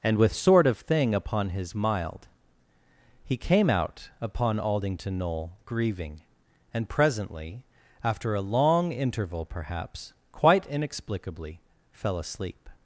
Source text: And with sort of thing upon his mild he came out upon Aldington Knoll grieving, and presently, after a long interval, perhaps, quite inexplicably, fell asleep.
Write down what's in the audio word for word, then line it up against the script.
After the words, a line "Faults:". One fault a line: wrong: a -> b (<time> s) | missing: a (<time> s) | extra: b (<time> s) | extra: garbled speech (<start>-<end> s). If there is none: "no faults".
And with sort of thing upon his mild he came out upon Aldington Knoll grieving, and presently, after a long interval, perhaps, quite inexplicably, fell asleep.
Faults:
no faults